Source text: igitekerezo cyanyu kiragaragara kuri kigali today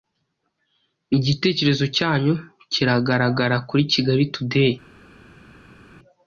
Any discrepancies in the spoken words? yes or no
no